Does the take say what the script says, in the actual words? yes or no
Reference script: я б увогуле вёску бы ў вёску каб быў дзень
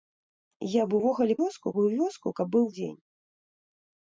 yes